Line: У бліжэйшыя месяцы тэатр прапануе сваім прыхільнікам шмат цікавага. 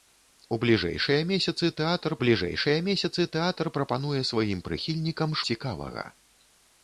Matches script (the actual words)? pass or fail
fail